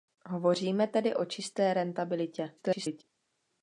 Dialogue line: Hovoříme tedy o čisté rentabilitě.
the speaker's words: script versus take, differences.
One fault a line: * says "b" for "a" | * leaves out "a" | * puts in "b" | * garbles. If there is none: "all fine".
* garbles